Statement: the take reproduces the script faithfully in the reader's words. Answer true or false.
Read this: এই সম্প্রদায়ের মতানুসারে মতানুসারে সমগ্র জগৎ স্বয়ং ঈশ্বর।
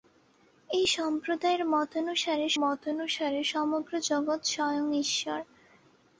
true